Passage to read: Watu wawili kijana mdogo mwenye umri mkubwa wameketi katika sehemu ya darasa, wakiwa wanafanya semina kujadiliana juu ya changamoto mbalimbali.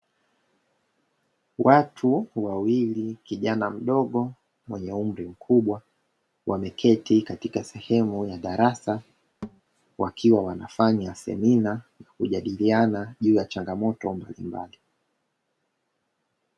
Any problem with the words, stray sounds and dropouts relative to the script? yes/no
yes